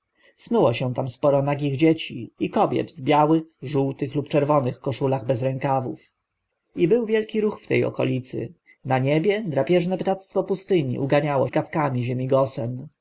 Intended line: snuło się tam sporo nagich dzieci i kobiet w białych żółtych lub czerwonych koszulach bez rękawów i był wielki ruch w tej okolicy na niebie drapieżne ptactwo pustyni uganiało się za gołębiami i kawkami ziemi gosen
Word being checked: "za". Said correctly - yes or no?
no